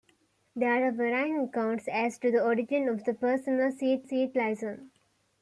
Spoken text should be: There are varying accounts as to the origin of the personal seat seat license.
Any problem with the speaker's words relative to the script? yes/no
no